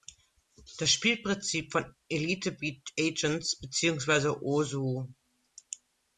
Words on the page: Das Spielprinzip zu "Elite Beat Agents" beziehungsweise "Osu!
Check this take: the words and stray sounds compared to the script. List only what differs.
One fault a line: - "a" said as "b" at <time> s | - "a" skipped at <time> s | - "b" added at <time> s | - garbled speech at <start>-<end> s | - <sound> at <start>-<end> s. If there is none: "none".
- "zu" said as "von" at 1.7 s